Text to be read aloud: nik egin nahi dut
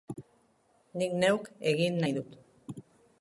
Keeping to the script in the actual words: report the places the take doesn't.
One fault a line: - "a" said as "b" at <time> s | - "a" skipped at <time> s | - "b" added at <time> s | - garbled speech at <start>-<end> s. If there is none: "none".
- "neuk" added at 1.2 s